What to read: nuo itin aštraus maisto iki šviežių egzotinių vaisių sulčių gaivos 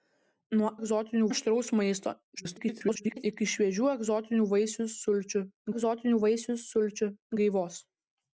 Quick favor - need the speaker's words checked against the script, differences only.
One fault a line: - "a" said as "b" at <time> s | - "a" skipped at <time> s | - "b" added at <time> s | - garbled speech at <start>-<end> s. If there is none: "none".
- "itin" said as "egzotinių" at 0.8 s
- garbled speech at 2.3-3.2 s
- "egzotinių vaisių sulčių" added at 5.7 s